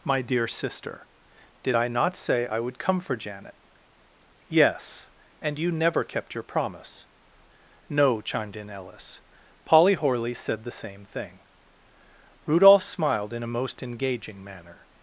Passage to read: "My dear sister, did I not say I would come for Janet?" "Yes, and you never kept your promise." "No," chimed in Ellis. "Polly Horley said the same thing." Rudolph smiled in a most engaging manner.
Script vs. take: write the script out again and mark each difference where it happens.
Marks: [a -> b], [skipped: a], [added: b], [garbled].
"My dear sister, did I not say I would come for Janet?" "Yes, and you never kept your promise." "No," chimed in Ellis. "Polly Horley said the same thing." Rudolph smiled in a most engaging manner.